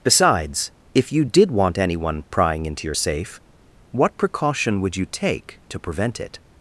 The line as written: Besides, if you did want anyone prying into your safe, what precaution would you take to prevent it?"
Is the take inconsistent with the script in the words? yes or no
no